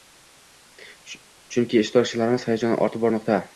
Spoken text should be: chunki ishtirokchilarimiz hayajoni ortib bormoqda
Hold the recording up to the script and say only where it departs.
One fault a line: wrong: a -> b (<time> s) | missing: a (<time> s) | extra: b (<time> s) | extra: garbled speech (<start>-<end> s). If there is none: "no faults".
no faults